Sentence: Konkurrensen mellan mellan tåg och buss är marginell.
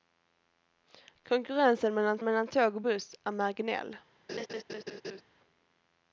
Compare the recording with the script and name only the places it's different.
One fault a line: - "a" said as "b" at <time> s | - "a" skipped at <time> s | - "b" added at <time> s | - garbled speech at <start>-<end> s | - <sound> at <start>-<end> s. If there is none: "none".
- laugh at 4.3-5.2 s